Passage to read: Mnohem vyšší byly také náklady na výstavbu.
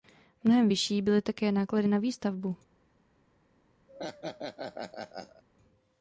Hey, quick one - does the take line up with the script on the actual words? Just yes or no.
yes